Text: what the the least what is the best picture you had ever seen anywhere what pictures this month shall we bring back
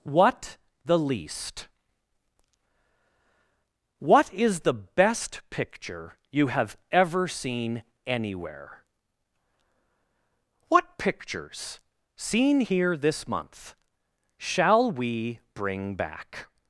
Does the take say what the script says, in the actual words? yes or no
no